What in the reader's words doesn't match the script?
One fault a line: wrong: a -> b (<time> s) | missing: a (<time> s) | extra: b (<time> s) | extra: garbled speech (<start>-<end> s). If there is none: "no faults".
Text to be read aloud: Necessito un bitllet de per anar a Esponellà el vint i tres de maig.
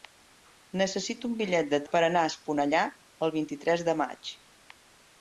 no faults